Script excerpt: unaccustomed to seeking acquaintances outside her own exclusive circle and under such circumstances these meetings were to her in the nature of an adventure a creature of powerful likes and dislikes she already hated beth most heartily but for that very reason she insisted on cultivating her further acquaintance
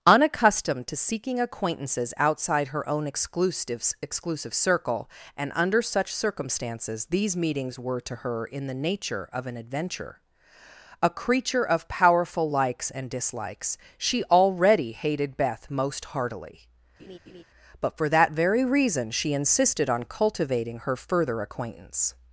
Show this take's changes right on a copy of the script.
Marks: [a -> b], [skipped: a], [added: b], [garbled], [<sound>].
unaccustomed to seeking acquaintances outside her own exclusive [added: exclusive] circle and under such circumstances these meetings were to her in the nature of an adventure a creature of powerful likes and dislikes she already hated beth most heartily [laugh] but for that very reason she insisted on cultivating her further acquaintance